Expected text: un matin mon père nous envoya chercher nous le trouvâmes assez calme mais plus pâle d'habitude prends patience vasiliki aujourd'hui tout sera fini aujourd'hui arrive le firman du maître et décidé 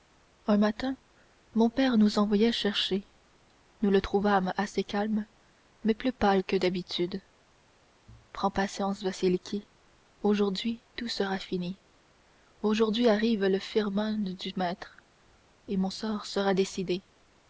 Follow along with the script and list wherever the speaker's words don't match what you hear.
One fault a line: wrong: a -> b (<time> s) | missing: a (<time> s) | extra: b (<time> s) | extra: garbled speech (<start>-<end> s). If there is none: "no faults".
extra: que (6.4 s)
extra: mon sort sera (15.8 s)